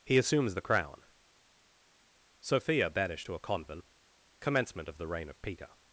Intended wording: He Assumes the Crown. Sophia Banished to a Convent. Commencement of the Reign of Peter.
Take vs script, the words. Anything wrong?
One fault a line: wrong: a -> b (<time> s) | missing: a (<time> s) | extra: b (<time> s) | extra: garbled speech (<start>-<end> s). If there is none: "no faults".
no faults